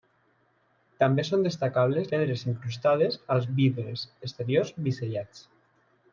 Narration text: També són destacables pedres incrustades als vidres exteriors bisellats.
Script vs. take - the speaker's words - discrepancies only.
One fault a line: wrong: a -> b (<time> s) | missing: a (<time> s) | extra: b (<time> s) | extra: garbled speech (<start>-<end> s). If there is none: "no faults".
no faults